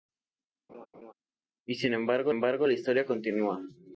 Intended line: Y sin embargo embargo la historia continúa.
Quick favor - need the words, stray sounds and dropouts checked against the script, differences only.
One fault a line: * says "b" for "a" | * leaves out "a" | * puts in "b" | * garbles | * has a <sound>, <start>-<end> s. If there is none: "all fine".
* has a laugh, 0.7-1.1 s